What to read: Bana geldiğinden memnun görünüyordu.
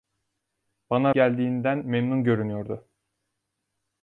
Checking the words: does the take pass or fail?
pass